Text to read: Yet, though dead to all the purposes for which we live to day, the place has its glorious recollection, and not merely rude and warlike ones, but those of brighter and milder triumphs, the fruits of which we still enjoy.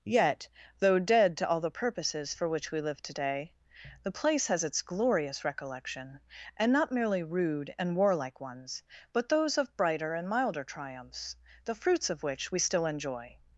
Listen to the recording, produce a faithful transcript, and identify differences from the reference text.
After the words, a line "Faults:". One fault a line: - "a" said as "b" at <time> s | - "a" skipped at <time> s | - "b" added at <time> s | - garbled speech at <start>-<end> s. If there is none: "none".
Yet, though dead to all the purposes for which we live to day, the place has its glorious recollection, and not merely rude and warlike ones, but those of brighter and milder triumphs, the fruits of which we still enjoy.
Faults:
none